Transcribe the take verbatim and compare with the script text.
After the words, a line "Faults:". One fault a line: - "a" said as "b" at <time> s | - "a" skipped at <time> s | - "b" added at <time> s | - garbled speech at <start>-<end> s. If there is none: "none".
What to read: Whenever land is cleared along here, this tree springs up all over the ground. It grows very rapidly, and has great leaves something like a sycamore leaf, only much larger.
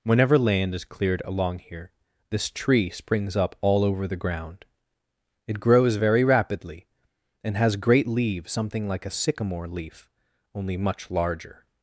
Whenever land is cleared along here, this tree springs up all over the ground. It grows very rapidly, and has great leaves something like a sycamore leaf, only much larger.
Faults:
none